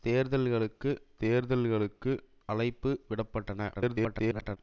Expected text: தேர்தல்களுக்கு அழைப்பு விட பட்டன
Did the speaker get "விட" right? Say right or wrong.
right